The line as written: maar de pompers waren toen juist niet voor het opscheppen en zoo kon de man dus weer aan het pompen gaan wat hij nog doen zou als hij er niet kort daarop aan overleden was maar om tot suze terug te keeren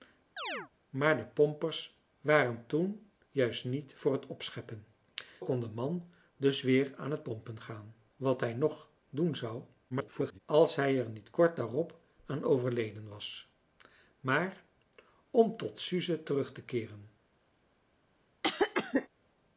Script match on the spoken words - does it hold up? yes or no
no